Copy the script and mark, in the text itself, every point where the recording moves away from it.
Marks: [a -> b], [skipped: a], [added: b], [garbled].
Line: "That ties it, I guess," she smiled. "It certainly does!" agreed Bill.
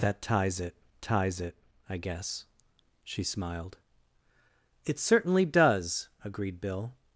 "That ties it, [added: ties it] I guess," she smiled. "It certainly does!" agreed Bill.